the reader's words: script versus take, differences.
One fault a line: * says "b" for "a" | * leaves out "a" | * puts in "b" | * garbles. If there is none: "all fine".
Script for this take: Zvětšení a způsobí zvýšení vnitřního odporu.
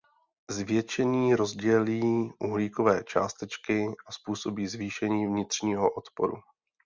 * puts in "rozdělí uhlíkové částečky"